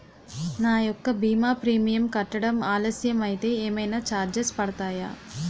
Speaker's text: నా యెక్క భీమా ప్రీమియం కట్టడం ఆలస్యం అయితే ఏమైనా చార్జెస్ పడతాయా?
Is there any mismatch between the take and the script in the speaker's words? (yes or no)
no